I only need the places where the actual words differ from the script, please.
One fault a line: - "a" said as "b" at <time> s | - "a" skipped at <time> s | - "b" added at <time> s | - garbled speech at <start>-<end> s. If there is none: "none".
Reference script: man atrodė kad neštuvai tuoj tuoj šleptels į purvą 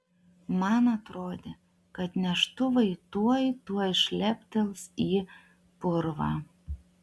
none